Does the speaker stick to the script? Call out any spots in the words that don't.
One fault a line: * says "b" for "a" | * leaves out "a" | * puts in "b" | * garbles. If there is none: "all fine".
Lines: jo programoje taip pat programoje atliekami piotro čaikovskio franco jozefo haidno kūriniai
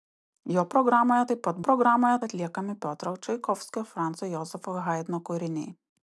all fine